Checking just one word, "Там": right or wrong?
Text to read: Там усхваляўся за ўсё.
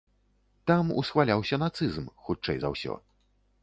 right